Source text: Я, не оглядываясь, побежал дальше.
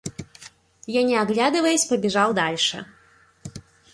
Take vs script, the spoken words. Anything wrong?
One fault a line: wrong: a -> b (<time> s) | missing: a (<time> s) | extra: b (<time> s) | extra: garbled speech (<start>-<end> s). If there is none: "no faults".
no faults